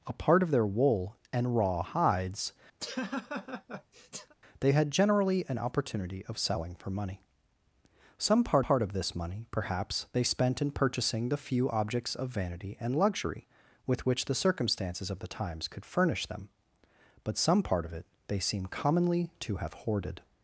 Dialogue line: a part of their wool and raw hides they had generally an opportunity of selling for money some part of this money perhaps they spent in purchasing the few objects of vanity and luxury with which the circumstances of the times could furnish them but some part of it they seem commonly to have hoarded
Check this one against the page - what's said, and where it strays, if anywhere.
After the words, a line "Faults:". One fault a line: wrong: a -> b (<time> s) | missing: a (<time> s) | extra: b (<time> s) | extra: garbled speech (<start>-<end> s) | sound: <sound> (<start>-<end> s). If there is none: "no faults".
a part of their wool and raw hides they had generally an opportunity of selling for money some part part of this money perhaps they spent in purchasing the few objects of vanity and luxury with which the circumstances of the times could furnish them but some part of it they seem commonly to have hoarded
Faults:
sound: laugh (2.8-4.3 s)
extra: part (8.6 s)